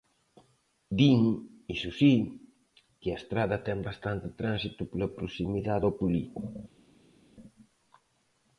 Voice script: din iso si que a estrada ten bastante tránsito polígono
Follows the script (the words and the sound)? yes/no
no